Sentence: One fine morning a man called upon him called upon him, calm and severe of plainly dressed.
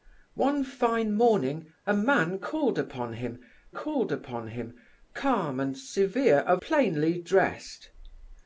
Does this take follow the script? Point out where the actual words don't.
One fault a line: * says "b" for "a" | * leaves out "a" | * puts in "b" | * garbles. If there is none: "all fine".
all fine